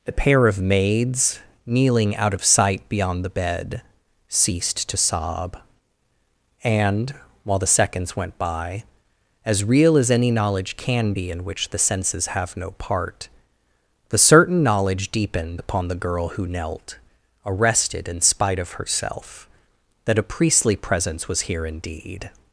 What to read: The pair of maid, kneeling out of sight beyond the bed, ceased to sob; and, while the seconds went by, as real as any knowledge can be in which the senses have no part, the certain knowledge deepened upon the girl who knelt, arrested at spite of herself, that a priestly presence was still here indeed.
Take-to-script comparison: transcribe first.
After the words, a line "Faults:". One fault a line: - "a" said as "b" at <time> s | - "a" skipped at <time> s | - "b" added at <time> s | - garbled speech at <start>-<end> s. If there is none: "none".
The pair of maids, kneeling out of sight beyond the bed, ceased to sob; and, while the seconds went by, as real as any knowledge can be in which the senses have no part, the certain knowledge deepened upon the girl who knelt, arrested in spite of herself, that a priestly presence was here indeed.
Faults:
- "maid" said as "maids" at 0.6 s
- "at" said as "in" at 18.1 s
- "still" skipped at 21.4 s